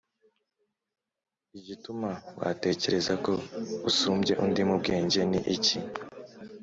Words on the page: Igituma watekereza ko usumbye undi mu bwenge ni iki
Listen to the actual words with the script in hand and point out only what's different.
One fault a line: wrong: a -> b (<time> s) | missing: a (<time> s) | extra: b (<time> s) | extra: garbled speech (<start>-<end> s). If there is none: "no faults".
no faults